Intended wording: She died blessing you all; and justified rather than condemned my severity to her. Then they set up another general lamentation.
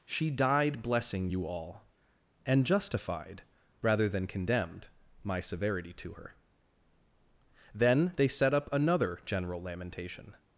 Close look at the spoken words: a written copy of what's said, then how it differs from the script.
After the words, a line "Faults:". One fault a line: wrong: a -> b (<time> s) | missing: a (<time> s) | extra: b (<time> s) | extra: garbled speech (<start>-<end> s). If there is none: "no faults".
She died blessing you all; and justified rather than condemned my severity to her. Then they set up another general lamentation.
Faults:
no faults